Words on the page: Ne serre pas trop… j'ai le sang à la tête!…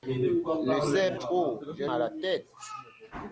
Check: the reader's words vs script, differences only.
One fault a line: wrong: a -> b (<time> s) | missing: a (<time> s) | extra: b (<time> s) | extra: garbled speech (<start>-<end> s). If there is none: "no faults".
missing: pas (1.1 s)
missing: le sang (1.9 s)